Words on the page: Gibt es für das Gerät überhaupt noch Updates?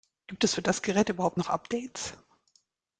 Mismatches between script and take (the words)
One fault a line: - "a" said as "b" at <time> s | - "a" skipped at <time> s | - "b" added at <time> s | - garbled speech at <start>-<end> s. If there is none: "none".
none